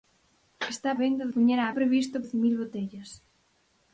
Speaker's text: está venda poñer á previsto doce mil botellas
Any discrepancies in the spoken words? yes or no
no